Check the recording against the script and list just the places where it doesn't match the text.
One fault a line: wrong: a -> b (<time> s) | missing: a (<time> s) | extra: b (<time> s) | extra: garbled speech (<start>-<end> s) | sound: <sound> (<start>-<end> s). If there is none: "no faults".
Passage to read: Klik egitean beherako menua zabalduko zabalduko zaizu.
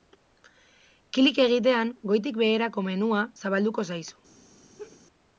extra: goitik (2.1 s)
missing: zabalduko (3.9 s)
sound: laugh (4.8-5.0 s)